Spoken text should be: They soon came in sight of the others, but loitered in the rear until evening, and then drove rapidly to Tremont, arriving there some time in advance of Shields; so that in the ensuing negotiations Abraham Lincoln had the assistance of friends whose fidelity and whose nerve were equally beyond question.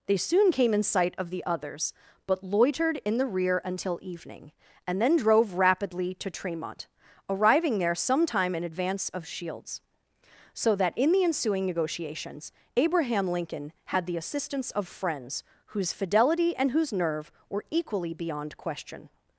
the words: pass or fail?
pass